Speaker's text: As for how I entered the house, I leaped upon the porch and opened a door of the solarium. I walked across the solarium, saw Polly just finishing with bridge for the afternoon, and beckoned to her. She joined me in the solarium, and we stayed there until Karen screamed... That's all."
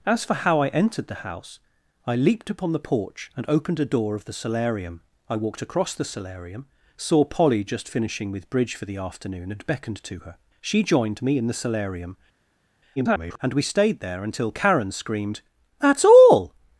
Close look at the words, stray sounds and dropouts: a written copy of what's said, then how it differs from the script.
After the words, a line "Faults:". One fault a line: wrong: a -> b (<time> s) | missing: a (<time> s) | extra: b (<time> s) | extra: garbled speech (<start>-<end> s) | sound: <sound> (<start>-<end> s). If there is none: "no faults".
As for how I entered the house, I leaped upon the porch and opened a door of the solarium. I walked across the solarium, saw Polly just finishing with bridge for the afternoon, and beckoned to her. She joined me in the solarium, [garbled] and we stayed there until Karen screamed... That's all."
Faults:
extra: garbled speech (13.0-13.4 s)